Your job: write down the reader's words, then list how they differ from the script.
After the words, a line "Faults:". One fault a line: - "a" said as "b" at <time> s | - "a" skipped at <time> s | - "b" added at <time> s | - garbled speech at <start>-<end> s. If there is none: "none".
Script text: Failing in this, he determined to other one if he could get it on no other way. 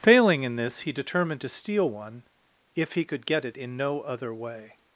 Failing in this, he determined to steal one if he could get it in no other way.
Faults:
- "other" said as "steal" at 1.5 s
- "on" said as "in" at 3.5 s